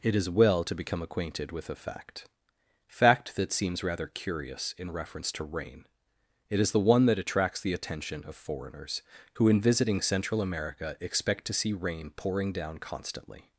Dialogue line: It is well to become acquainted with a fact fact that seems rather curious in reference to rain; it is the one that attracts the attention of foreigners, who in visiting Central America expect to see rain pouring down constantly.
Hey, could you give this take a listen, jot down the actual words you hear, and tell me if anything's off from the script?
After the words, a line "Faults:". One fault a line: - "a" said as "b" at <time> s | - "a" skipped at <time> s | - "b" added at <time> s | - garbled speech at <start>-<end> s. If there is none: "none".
It is well to become acquainted with a fact fact that seems rather curious in reference to rain; it is the one that attracts the attention of foreigners, who in visiting Central America expect to see rain pouring down constantly.
Faults:
none